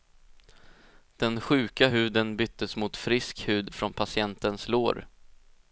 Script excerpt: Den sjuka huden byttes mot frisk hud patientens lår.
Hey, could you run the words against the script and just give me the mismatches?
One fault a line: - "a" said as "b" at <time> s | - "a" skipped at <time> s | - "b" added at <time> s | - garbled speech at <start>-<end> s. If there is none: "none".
- "från" added at 3.7 s